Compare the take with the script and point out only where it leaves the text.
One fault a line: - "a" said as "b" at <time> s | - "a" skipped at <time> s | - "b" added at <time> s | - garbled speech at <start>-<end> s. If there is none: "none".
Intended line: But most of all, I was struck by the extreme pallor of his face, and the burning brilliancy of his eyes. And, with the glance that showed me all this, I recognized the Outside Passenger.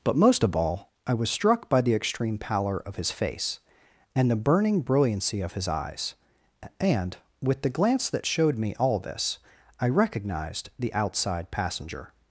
none